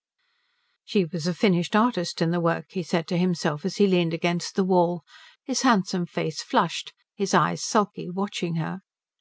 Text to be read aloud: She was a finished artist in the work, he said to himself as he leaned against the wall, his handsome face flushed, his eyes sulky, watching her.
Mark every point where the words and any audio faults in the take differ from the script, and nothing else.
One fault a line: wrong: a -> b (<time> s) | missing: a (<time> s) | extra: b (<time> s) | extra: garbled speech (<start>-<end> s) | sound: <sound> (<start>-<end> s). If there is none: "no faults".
no faults